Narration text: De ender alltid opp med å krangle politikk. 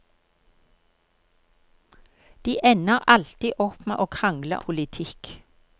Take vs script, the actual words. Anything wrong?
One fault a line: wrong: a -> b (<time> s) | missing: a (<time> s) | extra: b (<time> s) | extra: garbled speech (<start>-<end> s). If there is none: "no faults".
no faults